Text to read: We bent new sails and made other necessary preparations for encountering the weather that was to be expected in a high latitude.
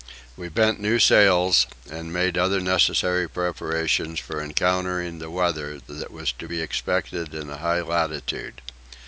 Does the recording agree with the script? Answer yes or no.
yes